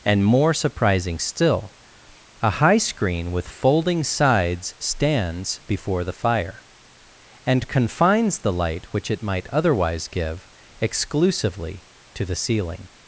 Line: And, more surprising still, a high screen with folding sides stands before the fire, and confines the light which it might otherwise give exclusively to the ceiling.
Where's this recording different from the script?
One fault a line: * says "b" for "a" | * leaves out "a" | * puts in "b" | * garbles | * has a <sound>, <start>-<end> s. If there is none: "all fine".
all fine